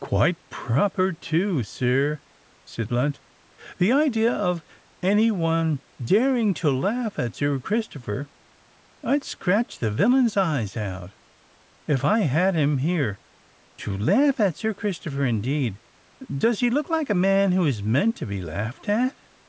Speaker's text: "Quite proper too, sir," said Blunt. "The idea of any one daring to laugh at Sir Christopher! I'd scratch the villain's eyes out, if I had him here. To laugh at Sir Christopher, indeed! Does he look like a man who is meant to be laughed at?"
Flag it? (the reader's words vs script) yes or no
no